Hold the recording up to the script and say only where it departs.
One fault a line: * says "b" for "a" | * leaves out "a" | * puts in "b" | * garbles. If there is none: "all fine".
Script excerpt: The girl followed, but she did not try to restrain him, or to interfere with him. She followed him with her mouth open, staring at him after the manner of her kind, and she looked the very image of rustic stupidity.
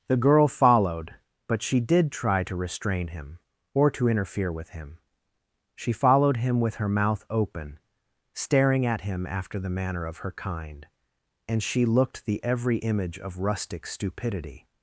* leaves out "not"
* says "every" for "very"